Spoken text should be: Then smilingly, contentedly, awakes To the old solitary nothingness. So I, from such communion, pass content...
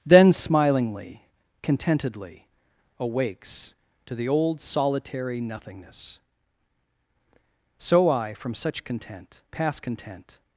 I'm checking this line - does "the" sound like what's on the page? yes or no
yes